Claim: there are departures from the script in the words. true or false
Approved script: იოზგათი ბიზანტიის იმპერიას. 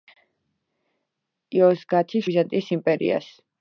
false